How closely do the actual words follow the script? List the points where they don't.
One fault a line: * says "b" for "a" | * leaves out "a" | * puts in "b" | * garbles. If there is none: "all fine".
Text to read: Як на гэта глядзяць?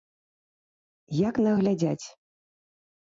* leaves out "гэта"